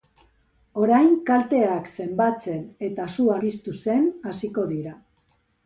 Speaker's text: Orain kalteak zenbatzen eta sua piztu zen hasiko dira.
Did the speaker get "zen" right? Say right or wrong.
right